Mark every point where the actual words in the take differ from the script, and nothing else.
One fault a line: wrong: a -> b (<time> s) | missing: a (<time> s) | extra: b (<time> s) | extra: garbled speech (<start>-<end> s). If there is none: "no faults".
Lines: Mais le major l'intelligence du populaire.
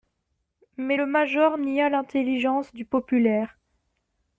extra: nia (1.6 s)